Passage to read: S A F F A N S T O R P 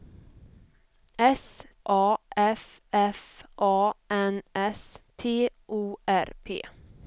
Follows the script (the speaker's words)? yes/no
yes